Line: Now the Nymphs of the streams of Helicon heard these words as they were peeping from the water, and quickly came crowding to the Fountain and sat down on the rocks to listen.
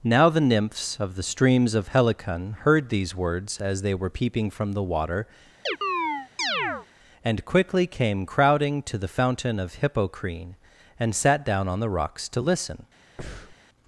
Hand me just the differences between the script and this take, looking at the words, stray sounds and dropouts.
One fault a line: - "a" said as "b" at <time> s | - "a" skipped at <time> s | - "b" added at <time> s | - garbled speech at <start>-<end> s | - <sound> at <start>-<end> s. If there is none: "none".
- chirp at 5.7-6.9 s
- "of Hippocrene" added at 9.6 s
- breath at 13.2-13.6 s